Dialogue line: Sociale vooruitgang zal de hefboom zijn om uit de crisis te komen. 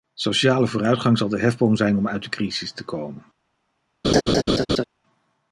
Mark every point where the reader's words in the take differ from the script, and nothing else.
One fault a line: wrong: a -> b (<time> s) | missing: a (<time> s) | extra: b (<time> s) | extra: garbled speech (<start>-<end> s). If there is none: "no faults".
no faults